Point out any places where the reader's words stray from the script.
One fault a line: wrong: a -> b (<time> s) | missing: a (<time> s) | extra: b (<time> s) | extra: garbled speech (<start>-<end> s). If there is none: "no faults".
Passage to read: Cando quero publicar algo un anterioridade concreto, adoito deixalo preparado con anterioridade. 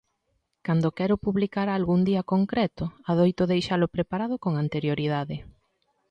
wrong: anterioridade -> día (2.1 s)